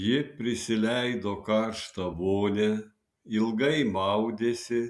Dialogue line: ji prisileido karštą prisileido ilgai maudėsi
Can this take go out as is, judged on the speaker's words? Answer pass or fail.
fail